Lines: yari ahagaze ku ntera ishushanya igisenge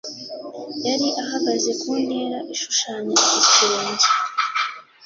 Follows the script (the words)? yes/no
yes